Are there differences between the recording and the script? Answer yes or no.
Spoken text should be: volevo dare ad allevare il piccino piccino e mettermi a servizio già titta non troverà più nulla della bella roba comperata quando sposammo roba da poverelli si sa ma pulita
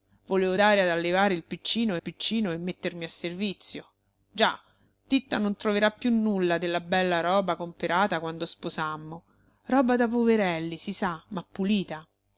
no